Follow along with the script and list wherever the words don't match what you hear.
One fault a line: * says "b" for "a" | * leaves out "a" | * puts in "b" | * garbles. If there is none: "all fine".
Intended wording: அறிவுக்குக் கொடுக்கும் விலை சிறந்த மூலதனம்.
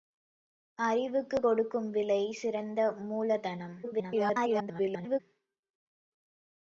* garbles